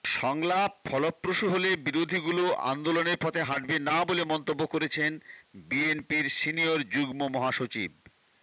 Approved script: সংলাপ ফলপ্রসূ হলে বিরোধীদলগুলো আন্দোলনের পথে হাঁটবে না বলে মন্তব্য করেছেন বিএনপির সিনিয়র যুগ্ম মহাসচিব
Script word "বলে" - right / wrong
right